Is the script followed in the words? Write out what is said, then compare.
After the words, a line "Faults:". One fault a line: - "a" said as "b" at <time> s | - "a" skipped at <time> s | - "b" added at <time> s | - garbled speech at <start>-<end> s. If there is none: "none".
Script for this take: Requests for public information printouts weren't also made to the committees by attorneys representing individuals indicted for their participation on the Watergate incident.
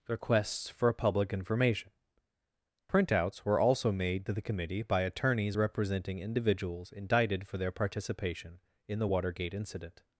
Requests for public information printouts were also made to the committee by attorneys representing individuals indicted for their participation in the Watergate incident.
Faults:
- "weren't" said as "were" at 3.5 s
- "committees" said as "committee" at 4.4 s
- "on" said as "in" at 8.9 s